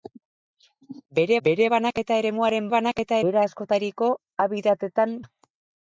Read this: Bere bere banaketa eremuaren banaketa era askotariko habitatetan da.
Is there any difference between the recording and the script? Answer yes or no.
no